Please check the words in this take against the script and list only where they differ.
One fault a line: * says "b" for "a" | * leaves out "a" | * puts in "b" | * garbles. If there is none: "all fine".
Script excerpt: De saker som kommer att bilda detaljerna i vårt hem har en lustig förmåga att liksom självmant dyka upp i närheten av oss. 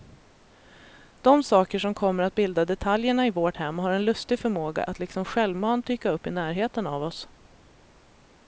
all fine